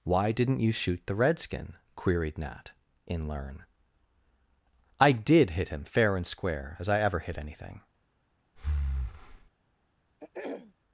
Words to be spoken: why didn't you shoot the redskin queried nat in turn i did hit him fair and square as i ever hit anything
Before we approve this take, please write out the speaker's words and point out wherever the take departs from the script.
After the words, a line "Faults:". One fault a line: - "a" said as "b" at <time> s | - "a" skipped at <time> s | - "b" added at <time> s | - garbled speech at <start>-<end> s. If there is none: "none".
why didn't you shoot the redskin queried nat in learn i did hit him fair and square as i ever hit anything
Faults:
- "turn" said as "learn" at 3.3 s